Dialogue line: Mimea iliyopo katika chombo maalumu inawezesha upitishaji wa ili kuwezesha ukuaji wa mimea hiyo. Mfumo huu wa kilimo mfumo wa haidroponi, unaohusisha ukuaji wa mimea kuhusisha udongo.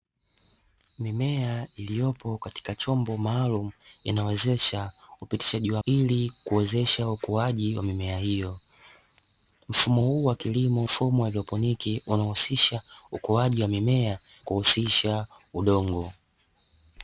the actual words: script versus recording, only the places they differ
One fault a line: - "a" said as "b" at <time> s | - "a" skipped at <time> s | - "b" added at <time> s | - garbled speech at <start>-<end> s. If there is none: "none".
none